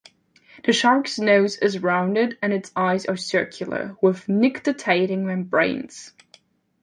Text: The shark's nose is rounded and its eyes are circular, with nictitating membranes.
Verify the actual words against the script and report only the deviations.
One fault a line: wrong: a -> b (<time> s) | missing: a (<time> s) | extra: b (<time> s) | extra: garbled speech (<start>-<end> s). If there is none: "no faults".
no faults